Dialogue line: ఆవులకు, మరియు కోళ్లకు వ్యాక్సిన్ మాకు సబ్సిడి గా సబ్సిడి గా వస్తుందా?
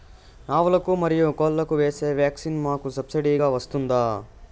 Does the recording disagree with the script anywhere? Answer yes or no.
yes